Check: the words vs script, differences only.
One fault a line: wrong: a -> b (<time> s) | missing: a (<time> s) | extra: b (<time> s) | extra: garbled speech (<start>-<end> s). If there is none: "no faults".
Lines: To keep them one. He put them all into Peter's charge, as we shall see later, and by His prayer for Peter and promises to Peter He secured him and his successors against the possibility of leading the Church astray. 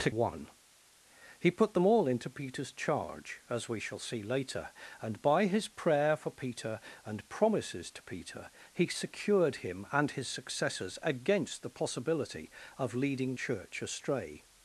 missing: keep them (0.1 s)
missing: the (13.3 s)